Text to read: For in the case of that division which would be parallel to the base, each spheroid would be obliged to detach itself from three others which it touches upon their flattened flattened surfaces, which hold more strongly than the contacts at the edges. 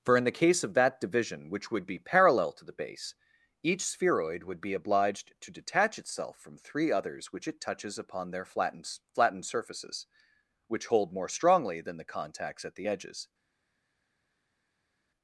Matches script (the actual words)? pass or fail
pass